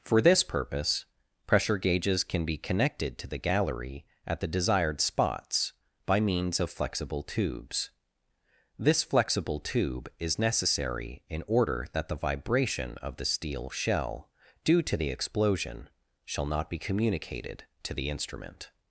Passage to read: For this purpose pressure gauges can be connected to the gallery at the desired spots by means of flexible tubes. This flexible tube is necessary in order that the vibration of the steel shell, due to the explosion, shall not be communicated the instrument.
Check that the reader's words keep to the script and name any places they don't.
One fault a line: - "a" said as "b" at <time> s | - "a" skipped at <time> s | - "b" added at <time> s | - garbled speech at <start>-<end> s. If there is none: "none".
- "to" added at 17.8 s